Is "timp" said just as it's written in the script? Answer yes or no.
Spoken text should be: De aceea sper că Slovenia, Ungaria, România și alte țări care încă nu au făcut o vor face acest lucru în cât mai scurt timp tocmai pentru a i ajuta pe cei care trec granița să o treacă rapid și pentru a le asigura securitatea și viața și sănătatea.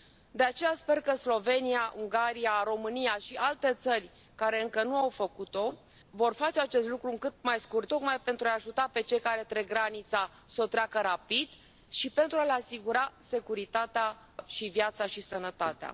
no